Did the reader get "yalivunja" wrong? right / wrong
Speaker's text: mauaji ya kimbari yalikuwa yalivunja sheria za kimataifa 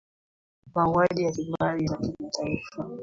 wrong